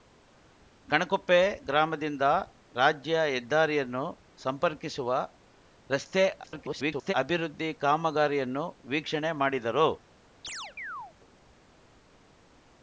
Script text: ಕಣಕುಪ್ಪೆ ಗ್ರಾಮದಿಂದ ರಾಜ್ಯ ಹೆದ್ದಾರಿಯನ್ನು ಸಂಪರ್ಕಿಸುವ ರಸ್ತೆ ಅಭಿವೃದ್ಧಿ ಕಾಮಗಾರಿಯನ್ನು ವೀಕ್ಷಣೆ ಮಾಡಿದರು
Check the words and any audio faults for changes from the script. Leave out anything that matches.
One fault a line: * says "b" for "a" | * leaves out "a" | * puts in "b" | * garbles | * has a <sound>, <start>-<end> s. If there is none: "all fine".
* garbles
* has a chirp, 10.4-11.1 s